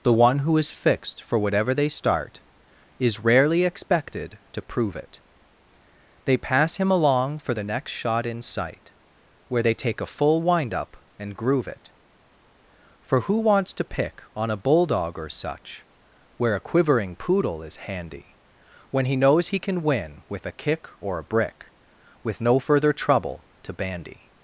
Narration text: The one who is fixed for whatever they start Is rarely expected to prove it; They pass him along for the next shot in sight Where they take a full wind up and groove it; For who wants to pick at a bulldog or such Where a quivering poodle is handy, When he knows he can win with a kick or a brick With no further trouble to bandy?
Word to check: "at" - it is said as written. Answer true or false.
false